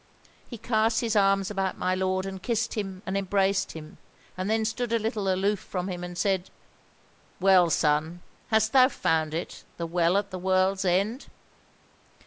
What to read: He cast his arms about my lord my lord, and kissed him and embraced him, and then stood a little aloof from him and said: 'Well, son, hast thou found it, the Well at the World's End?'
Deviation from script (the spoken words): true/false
true